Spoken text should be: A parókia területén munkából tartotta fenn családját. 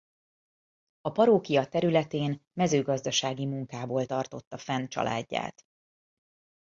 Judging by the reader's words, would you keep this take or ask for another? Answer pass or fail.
fail